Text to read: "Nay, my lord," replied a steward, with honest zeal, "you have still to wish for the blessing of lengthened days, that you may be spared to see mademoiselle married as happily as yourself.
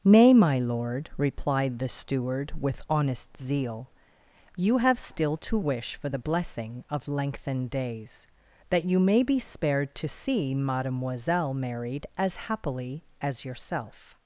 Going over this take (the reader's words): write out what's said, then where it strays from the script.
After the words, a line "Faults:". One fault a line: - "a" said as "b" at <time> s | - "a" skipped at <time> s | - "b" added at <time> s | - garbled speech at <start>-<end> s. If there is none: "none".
"Nay, my lord," replied the steward, with honest zeal, "you have still to wish for the blessing of lengthened days, that you may be spared to see mademoiselle married as happily as yourself.
Faults:
- "a" said as "the" at 1.8 s